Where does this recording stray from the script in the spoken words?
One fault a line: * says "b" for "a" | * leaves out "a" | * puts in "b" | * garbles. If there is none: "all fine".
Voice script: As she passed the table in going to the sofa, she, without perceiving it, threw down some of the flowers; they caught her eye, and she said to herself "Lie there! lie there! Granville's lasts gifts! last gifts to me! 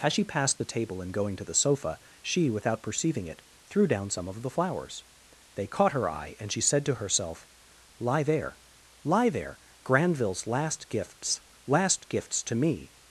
* says "last" for "lasts"